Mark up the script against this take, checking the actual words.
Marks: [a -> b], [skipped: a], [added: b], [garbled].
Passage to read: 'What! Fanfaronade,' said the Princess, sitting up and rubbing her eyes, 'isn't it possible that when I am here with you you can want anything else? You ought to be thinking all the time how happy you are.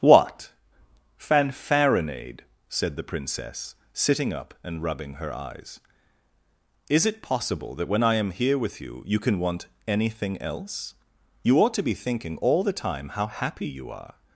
'What! Fanfaronade,' said the Princess, sitting up and rubbing her eyes, ['isn't -> is] it possible that when I am here with you you can want anything else? You ought to be thinking all the time how happy you are.